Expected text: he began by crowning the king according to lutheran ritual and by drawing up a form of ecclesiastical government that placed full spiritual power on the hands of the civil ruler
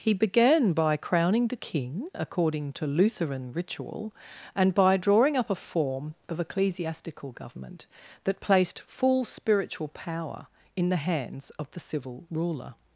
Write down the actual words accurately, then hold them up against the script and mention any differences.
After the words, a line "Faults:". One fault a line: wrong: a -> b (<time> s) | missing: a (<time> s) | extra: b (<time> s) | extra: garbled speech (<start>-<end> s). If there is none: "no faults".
he began by crowning the king according to lutheran ritual and by drawing up a form of ecclesiastical government that placed full spiritual power in the hands of the civil ruler
Faults:
wrong: on -> in (10.8 s)